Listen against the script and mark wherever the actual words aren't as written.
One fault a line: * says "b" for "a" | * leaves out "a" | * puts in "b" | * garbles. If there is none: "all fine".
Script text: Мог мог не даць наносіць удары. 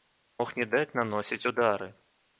* leaves out "мог"